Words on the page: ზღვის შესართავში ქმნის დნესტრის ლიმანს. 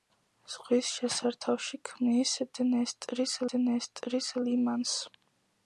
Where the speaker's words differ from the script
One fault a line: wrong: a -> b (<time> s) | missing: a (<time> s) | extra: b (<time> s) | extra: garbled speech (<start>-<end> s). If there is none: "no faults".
extra: დნესტრის (3.6 s)